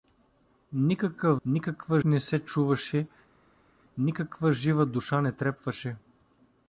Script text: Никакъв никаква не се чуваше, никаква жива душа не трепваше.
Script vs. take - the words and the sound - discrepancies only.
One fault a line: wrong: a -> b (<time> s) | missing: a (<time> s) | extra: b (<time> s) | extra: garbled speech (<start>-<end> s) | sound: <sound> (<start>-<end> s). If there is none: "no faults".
no faults